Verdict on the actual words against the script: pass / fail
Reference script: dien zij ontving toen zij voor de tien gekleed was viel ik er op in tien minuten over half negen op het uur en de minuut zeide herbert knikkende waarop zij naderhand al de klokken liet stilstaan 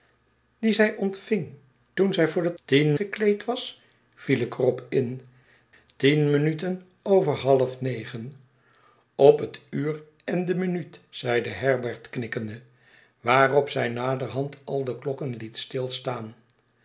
pass